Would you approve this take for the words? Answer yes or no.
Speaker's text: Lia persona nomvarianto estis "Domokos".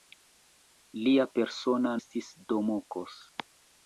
no